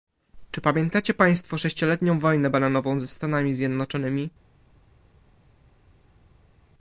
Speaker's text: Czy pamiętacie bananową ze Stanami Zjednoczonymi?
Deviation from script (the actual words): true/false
true